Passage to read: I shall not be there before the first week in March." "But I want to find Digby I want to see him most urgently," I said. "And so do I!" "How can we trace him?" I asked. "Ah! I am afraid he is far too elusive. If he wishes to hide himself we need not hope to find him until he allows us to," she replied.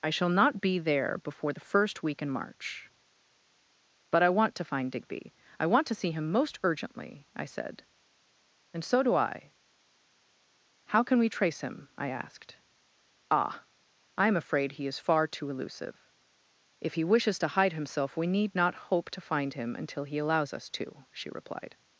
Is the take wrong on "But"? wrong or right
right